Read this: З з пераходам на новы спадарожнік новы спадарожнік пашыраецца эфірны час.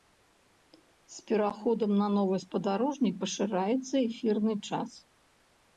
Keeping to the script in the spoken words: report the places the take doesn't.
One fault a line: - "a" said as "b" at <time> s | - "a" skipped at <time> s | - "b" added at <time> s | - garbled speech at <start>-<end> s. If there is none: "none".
- "з" skipped at 1.2 s
- "новы спадарожнік" skipped at 3.1 s